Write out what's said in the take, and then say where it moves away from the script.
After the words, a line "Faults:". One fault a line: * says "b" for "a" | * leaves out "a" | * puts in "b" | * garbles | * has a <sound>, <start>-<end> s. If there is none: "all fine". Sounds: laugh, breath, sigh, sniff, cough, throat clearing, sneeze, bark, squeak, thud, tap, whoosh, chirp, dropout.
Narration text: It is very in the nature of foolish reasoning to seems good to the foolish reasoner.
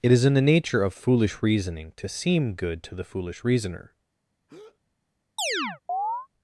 It is in the nature of foolish reasoning to seem good to the foolish reasoner.
Faults:
* leaves out "very"
* says "seem" for "seems"
* has a breath, 4.5-4.8 s
* has a chirp, 5.4-6.3 s